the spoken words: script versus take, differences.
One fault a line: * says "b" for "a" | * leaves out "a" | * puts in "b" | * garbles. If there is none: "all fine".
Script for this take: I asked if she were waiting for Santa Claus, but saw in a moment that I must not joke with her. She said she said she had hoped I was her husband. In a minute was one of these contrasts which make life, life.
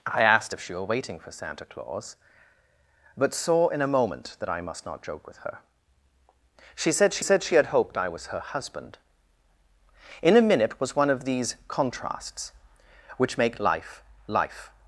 all fine